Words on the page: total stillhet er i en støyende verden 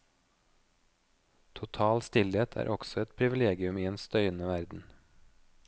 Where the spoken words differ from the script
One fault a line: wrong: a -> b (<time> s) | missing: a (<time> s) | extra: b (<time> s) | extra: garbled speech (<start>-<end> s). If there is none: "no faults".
extra: også et privilegium (2.7 s)